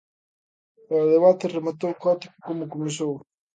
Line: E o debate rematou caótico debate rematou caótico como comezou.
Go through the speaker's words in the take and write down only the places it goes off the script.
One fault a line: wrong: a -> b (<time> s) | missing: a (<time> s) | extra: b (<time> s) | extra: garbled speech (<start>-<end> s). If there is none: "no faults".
missing: debate rematou caótico (2.4 s)